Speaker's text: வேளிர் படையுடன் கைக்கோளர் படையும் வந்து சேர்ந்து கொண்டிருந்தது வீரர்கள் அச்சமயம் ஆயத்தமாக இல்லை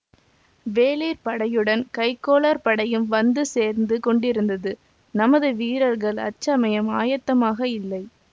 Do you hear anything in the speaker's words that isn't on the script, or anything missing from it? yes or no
yes